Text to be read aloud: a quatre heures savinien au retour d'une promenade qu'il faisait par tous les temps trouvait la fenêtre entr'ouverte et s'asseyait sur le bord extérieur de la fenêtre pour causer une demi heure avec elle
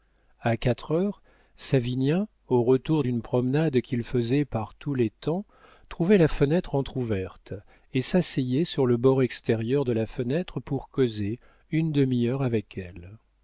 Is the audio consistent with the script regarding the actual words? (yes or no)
yes